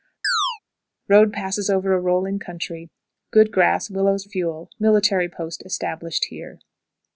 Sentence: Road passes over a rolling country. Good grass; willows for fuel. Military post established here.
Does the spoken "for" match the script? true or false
false